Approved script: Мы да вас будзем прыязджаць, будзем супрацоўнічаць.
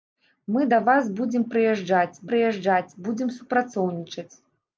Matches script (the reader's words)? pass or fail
fail